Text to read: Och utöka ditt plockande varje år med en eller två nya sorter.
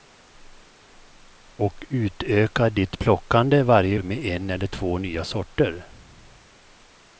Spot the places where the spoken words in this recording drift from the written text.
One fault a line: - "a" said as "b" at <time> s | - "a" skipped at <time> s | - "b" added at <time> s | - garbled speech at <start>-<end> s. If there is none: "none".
- "år" skipped at 4.0 s